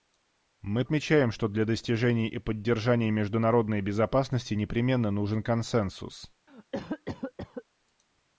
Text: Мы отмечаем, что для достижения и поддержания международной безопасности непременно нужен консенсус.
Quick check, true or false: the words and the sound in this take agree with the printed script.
false